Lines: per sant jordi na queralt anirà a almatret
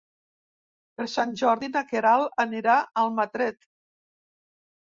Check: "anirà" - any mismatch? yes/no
no